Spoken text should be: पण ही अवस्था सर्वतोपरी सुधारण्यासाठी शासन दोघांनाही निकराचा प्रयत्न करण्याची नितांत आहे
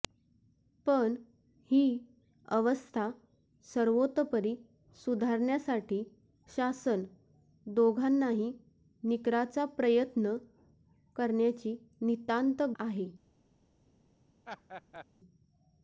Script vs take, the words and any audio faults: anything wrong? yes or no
yes